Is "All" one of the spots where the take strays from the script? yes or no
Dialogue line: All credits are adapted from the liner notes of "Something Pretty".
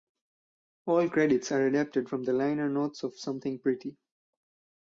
no